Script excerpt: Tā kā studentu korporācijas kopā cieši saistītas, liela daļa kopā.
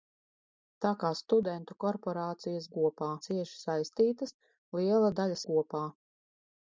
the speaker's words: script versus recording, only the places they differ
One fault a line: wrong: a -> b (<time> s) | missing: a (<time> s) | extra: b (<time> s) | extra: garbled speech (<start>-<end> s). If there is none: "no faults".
no faults